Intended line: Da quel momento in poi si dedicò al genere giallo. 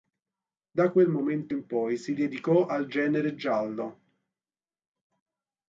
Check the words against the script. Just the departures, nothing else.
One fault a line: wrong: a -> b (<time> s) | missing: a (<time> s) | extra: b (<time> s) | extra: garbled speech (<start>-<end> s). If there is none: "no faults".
no faults